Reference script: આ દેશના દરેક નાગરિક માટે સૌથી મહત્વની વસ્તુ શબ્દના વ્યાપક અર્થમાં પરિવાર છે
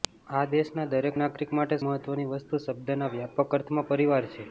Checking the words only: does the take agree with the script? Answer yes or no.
no